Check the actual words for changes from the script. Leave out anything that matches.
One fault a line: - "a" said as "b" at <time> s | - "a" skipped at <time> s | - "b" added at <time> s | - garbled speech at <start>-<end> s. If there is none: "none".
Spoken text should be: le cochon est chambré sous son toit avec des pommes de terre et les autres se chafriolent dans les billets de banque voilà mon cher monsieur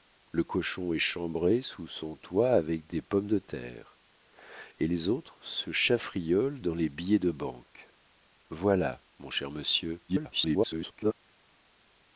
- garbled speech at 10.1-11.1 s